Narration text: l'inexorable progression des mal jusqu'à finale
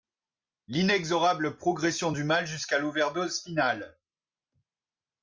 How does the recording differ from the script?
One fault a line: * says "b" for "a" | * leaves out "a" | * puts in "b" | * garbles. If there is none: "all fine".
* says "du" for "des"
* puts in "l'overdose"